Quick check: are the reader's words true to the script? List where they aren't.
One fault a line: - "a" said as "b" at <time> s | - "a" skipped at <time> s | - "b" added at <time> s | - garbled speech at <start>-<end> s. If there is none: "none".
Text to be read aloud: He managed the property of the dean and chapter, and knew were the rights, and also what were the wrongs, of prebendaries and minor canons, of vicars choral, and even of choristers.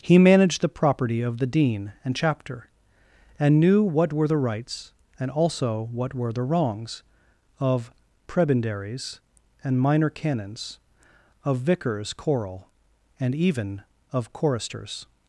- "what" added at 3.8 s